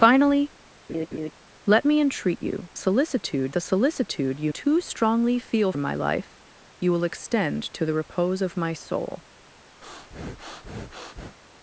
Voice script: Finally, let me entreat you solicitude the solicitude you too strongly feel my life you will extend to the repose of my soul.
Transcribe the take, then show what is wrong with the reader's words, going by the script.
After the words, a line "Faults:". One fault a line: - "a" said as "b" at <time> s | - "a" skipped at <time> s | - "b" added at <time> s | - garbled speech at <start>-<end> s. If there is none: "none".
Finally, let me entreat you solicitude the solicitude you too strongly feel my life you will extend to the repose of my soul.
Faults:
none